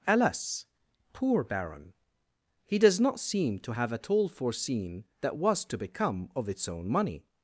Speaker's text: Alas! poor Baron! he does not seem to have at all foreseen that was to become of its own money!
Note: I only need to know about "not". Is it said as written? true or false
true